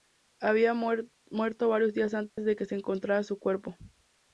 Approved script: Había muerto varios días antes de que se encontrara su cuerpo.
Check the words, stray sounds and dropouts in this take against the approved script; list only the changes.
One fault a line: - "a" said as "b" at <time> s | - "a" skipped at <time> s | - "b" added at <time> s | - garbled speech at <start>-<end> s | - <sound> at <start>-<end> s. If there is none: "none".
- dropout at 2.3-2.4 s